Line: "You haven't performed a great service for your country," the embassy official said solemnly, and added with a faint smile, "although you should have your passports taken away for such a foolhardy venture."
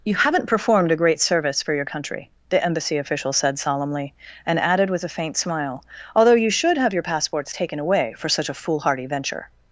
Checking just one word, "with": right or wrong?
right